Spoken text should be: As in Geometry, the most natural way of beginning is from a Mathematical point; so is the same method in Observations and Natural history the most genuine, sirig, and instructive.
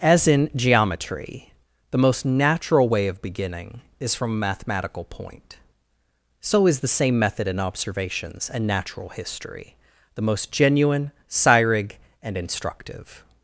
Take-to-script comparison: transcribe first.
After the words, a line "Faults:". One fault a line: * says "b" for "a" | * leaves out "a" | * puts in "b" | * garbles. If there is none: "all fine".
As in Geometry, the most natural way of beginning is from a Mathematical point; so is the same method in Observations and Natural history the most genuine, sirig, and instructive.
Faults:
all fine